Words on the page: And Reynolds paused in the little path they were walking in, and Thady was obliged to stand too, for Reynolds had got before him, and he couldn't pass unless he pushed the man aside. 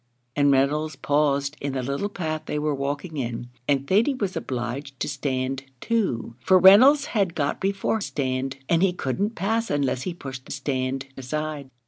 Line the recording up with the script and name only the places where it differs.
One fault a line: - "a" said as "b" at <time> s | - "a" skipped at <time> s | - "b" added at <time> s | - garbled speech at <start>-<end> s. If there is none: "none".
- "him" said as "stand" at 8.0 s
- "man" said as "stand" at 10.5 s